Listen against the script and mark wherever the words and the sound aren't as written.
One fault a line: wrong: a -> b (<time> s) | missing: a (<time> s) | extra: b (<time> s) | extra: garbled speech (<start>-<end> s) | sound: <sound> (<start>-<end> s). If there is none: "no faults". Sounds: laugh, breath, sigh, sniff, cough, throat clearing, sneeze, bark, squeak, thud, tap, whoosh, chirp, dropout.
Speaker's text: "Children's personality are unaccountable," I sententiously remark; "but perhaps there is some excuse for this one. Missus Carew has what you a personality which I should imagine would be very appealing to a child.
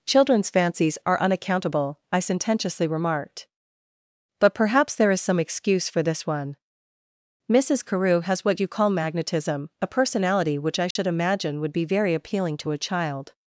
wrong: personality -> fancies (0.5 s)
wrong: remark -> remarked (2.9 s)
extra: call magnetism (8.7 s)
sound: dropout (10.9-11.0 s)